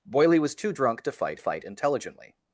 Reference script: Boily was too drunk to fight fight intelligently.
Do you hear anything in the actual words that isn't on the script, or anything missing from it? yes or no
no